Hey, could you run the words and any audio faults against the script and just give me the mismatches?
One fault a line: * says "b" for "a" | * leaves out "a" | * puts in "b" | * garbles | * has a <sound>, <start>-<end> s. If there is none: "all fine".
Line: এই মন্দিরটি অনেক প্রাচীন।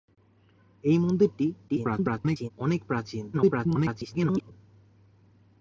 * garbles
* garbles